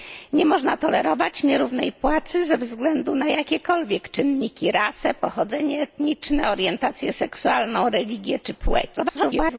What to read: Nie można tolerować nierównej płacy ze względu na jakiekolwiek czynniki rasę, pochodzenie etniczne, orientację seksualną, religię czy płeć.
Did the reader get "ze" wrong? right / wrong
right